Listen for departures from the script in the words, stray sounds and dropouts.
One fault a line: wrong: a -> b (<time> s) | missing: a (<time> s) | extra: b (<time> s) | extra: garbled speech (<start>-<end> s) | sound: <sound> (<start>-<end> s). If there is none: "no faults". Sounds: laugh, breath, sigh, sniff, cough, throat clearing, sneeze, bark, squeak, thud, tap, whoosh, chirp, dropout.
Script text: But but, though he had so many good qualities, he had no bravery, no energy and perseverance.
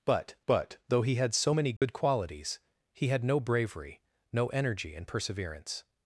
sound: dropout (1.8-1.8 s)